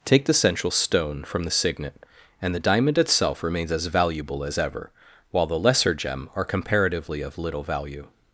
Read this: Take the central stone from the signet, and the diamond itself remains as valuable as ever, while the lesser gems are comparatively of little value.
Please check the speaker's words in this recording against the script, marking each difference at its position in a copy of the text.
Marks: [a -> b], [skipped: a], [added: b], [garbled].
Take the central stone from the signet, and the diamond itself remains as valuable as ever, while the lesser [gems -> gem] are comparatively of little value.